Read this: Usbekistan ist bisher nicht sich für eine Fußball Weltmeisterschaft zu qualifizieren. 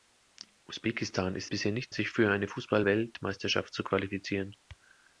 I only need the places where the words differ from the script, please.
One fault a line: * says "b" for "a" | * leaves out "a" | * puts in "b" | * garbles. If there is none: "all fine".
all fine